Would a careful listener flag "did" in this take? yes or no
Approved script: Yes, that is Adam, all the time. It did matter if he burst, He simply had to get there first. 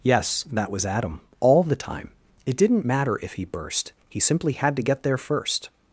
yes